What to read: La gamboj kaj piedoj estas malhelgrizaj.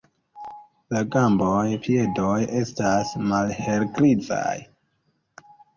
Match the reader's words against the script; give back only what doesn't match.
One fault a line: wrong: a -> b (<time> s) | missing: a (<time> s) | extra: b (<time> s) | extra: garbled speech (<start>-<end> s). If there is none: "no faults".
missing: kaj (1.6 s)